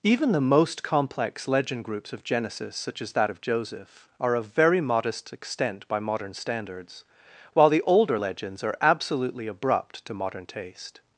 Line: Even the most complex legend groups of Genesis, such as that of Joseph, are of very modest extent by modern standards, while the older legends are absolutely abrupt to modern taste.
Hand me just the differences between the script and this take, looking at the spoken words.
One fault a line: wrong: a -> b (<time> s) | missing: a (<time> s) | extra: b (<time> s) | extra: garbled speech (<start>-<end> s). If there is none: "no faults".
no faults